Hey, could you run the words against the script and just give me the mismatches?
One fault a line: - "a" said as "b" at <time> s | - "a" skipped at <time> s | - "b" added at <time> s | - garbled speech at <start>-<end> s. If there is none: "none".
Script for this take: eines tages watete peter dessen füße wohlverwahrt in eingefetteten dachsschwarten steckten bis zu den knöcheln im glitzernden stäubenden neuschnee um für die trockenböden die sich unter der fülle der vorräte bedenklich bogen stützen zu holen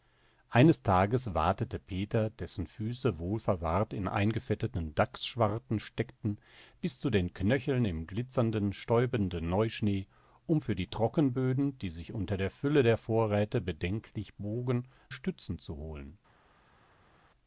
none